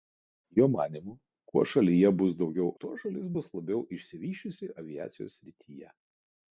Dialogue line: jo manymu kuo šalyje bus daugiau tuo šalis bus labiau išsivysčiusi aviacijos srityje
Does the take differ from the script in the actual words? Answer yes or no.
no